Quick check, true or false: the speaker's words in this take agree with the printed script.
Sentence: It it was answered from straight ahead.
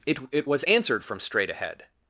true